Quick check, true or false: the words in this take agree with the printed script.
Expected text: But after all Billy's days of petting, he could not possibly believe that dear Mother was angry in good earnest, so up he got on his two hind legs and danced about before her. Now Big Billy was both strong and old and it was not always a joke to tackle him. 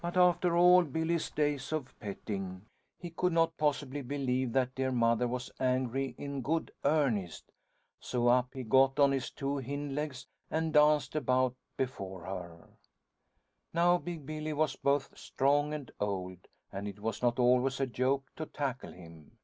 true